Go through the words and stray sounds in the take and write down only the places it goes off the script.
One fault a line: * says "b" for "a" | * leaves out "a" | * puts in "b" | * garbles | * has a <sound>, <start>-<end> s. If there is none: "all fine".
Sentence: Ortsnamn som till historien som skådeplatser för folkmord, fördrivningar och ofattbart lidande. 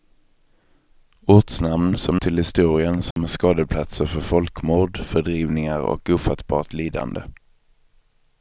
* has a dropout, 3.1-3.2 s